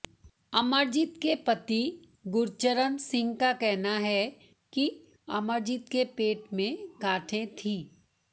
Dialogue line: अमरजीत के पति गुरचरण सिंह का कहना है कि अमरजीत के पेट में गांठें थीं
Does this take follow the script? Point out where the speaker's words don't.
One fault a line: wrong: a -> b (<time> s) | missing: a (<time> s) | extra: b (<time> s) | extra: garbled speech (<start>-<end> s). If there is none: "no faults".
no faults